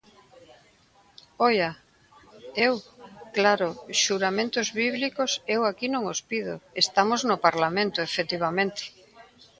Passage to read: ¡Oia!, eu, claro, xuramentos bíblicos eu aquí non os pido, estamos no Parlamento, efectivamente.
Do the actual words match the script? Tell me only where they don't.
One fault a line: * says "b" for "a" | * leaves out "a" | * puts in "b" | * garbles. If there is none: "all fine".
all fine